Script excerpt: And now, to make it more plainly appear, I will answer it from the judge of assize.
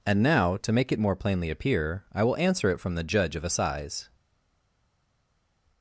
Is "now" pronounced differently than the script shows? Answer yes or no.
no